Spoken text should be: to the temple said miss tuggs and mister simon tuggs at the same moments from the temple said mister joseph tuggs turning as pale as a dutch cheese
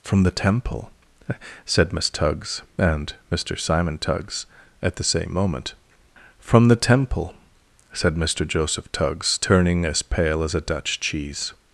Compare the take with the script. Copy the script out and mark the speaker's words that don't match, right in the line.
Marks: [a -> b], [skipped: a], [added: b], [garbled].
[to -> from] the temple said miss tuggs and mister simon tuggs at the same [moments -> moment] from the temple said mister joseph tuggs turning as pale as a dutch cheese